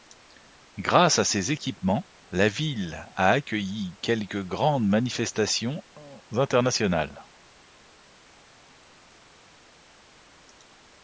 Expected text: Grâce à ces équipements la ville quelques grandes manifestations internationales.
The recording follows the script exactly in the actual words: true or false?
false